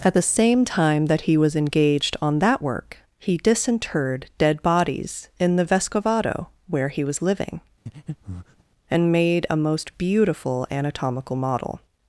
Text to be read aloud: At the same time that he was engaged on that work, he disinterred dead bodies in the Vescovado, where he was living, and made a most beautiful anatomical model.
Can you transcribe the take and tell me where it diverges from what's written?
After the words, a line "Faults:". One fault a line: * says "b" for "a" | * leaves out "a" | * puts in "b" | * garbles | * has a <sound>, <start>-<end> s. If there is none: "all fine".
At the same time that he was engaged on that work, he disinterred dead bodies in the Vescovado, where he was living, and made a most beautiful anatomical model.
Faults:
* has a breath, 7.9-8.6 s